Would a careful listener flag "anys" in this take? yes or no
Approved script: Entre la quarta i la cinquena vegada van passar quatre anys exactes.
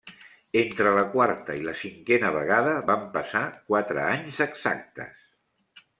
no